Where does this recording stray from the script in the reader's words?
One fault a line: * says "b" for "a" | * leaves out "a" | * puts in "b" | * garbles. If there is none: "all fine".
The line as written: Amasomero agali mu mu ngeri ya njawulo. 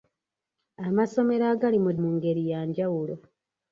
all fine